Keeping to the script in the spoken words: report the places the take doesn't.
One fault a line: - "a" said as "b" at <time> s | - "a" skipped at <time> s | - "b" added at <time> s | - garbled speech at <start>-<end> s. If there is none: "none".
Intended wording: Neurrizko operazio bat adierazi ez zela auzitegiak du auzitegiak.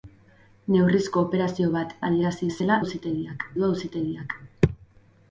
none